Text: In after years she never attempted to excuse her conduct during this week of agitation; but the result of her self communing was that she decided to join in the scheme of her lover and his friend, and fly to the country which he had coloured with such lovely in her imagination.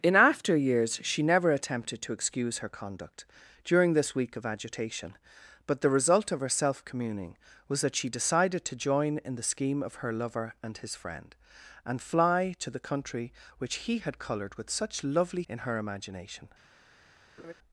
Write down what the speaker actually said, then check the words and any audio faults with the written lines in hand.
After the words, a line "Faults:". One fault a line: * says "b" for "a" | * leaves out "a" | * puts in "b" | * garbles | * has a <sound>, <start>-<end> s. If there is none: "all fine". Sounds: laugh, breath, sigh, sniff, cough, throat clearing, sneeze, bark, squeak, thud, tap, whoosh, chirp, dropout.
In after years she never attempted to excuse her conduct during this week of agitation; but the result of her self communing was that she decided to join in the scheme of her lover and his friend, and fly to the country which he had coloured with such lovely in her imagination.
Faults:
* has a laugh, 17.4-17.5 s